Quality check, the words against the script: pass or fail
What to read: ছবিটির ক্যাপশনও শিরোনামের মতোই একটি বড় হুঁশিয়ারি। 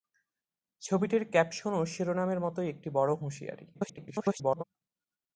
fail